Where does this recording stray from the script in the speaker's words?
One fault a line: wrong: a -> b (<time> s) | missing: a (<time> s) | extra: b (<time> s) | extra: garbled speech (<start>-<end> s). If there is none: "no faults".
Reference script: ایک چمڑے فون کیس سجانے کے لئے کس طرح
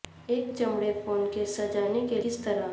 missing: لئے (2.2 s)